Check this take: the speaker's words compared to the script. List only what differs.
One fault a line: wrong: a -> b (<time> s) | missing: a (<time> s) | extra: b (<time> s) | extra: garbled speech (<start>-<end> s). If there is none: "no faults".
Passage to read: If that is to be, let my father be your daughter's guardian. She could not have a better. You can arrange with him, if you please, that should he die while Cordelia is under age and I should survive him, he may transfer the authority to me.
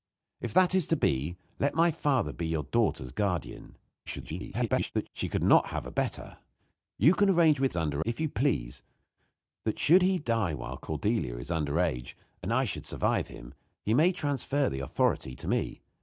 extra: garbled speech (4.1-5.1 s)
wrong: him -> under (7.7 s)